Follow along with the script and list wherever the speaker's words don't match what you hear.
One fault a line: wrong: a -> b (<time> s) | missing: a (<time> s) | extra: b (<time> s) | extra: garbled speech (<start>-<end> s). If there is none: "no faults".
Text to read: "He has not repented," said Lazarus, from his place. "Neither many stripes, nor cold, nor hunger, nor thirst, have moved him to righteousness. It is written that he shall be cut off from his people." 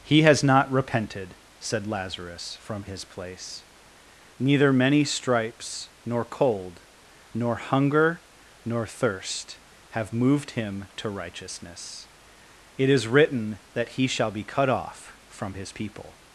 no faults